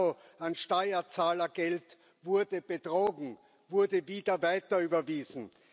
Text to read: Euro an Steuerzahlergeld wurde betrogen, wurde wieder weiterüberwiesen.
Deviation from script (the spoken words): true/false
false